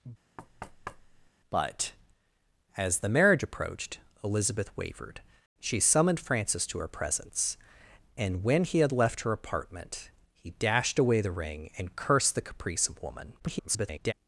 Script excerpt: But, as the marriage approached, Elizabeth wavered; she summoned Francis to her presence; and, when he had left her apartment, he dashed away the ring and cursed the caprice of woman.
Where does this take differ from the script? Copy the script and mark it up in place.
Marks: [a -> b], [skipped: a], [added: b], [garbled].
But, as the marriage approached, Elizabeth wavered; she summoned Francis to her presence; and, when he had left her apartment, he dashed away the ring and cursed the caprice of woman. [garbled]